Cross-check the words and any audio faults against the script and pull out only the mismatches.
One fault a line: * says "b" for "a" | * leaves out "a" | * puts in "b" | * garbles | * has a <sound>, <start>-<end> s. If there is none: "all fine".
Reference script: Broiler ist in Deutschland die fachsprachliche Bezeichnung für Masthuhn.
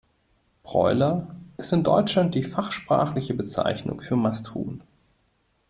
all fine